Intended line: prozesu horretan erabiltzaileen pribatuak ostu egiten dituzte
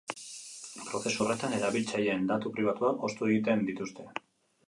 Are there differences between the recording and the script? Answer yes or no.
yes